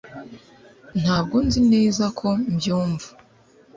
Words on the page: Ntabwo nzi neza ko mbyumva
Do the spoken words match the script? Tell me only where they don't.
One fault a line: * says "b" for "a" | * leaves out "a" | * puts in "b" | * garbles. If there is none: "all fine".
all fine